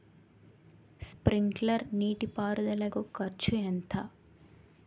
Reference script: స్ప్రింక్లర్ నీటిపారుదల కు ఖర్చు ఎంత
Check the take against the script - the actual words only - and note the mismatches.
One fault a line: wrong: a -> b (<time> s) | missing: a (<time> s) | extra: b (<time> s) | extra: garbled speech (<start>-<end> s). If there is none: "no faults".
no faults